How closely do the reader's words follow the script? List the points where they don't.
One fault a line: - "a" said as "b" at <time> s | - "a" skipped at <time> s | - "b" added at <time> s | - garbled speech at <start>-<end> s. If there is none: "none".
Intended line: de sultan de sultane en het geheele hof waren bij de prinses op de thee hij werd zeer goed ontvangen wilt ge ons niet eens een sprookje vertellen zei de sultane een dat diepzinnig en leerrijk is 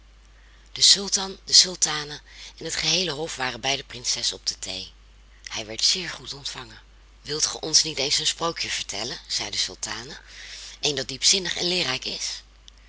none